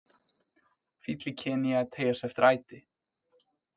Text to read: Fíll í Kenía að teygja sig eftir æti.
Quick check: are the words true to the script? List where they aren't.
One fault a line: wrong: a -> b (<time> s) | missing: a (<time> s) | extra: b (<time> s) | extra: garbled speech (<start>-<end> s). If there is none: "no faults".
no faults